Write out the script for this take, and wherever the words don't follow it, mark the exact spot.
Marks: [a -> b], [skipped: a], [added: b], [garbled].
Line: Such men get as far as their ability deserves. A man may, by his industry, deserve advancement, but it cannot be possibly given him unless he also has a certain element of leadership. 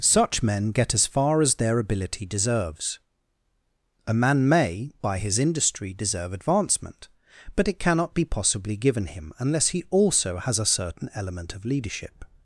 Such men get as far as their ability deserves. A man may, by his industry, deserve advancement, but it cannot be possibly given him unless he also has a certain element of leadership.